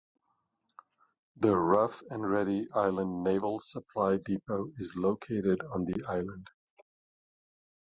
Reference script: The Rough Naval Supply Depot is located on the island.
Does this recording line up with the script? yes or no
no